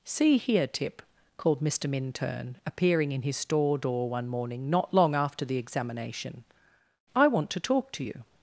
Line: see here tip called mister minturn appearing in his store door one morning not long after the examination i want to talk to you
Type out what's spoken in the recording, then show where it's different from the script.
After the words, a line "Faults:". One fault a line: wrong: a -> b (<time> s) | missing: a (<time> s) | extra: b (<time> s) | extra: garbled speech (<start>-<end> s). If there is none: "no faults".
see here tip called mister minturn appearing in his store door one morning not long after the examination i want to talk to you
Faults:
no faults